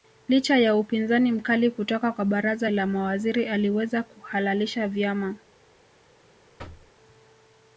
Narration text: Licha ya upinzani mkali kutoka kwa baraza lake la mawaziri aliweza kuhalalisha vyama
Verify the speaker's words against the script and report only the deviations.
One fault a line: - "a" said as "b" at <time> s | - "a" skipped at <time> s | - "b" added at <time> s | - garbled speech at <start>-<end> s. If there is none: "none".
- "lake" skipped at 2.7 s